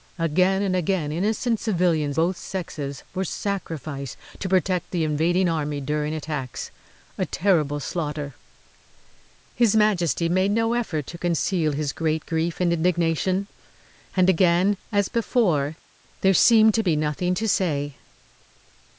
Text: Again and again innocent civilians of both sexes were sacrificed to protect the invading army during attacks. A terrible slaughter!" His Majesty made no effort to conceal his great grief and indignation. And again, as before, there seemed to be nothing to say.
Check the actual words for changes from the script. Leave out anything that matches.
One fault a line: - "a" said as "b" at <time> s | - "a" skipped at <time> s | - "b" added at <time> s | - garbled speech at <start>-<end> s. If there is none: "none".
- "of" skipped at 2.2 s